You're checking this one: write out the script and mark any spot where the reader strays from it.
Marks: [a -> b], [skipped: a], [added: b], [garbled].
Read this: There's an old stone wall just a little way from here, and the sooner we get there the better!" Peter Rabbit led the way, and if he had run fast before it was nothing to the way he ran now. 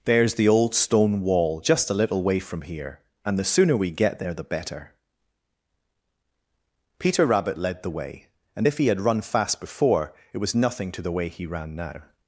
There's [an -> the] old stone wall just a little way from here, and the sooner we get there the better!" Peter Rabbit led the way, and if he had run fast before it was nothing to the way he ran now.